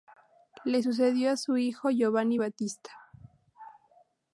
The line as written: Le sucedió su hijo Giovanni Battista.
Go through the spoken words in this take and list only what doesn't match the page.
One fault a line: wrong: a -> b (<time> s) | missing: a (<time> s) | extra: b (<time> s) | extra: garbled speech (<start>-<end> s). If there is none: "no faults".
no faults